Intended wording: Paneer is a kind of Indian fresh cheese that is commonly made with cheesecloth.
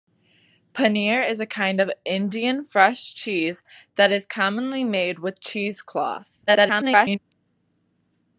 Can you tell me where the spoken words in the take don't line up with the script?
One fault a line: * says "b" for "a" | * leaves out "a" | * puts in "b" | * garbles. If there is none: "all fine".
* garbles